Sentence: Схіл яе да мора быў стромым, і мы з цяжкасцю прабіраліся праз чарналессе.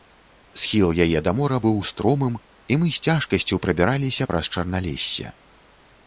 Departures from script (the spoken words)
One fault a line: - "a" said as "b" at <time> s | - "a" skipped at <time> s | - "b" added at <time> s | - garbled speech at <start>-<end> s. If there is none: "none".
none